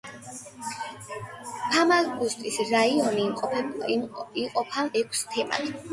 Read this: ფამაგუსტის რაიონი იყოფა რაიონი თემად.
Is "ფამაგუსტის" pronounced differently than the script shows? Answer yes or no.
no